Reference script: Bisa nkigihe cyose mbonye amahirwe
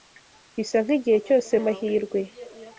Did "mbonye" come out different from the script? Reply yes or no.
yes